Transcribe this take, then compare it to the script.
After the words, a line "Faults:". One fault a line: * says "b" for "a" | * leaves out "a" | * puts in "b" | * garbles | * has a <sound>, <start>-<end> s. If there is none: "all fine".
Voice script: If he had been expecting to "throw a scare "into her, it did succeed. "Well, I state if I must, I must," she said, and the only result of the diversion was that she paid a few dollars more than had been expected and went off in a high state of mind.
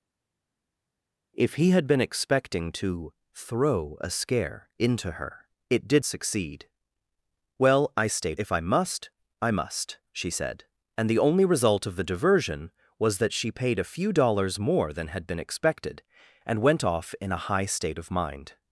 If he had been expecting to "throw a scare "into her, it did succeed. "Well, I state if I must, I must," she said, and the only result of the diversion was that she paid a few dollars more than had been expected and went off in a high state of mind.
Faults:
all fine